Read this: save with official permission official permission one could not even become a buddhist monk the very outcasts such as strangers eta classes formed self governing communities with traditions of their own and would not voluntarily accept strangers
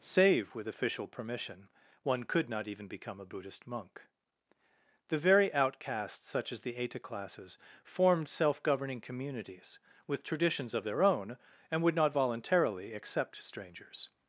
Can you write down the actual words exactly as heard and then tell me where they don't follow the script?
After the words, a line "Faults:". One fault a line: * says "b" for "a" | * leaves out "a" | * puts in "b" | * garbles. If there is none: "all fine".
save with official permission one could not even become a buddhist monk the very outcasts such as the eta classes formed self governing communities with traditions of their own and would not voluntarily accept strangers
Faults:
* leaves out "official permission"
* says "the" for "strangers"